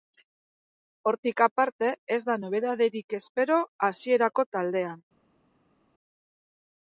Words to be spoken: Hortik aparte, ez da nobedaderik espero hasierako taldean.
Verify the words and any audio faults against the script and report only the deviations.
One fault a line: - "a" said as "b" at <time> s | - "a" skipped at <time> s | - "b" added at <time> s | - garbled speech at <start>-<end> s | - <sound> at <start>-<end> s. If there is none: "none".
none